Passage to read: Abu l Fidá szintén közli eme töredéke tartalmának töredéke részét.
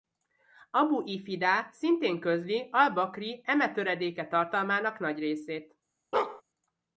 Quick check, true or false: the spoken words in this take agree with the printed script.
false